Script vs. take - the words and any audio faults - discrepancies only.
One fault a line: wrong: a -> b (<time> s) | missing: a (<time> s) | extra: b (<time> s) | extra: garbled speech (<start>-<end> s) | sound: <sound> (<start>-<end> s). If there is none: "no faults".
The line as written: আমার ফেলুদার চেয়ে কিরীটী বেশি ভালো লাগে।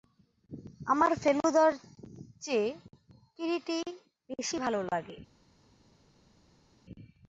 no faults